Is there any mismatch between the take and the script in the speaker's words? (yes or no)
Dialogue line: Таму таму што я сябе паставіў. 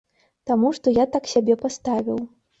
yes